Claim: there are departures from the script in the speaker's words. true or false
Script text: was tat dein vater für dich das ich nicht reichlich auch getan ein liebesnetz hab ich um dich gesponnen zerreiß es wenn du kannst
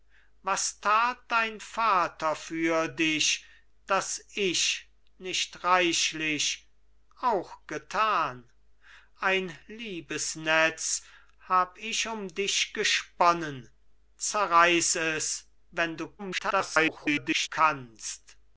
true